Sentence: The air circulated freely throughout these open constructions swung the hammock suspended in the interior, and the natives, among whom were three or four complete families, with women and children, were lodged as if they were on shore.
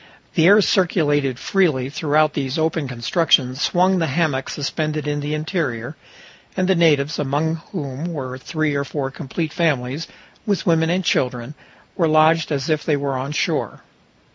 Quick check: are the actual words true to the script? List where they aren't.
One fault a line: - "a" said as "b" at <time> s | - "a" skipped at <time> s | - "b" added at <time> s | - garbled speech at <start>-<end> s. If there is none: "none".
none